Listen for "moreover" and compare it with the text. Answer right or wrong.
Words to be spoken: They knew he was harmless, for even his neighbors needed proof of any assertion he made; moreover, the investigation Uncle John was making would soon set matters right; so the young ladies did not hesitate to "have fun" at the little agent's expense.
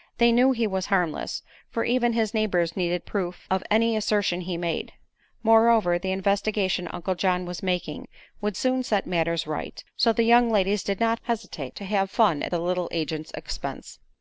right